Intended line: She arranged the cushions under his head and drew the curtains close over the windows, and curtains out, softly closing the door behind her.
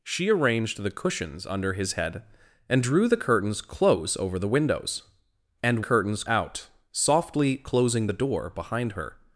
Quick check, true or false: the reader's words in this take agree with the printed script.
true